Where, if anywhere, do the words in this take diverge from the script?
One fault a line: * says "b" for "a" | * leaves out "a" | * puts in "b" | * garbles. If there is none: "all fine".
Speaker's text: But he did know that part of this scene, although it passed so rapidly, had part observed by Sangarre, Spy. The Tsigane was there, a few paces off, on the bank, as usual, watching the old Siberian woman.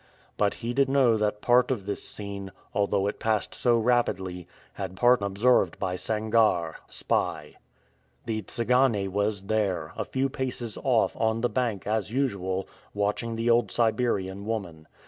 all fine